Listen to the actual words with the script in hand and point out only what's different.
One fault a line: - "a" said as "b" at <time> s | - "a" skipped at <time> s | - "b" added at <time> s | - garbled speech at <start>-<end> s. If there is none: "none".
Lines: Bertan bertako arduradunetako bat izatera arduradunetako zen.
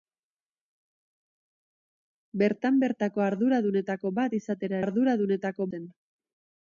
none